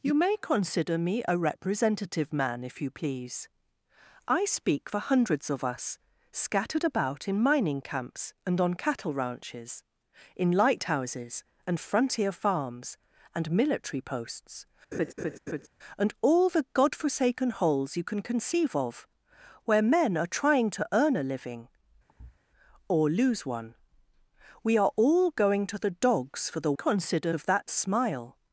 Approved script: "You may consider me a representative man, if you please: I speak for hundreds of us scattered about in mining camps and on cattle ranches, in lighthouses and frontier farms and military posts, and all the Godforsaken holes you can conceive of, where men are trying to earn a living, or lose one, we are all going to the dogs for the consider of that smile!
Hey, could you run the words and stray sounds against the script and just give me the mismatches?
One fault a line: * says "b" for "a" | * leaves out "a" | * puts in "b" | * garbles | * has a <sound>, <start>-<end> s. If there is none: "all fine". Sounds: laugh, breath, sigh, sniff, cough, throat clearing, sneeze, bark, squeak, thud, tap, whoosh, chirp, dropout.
* has a laugh, 14.9-15.7 s
* has a thud, 22.1-22.4 s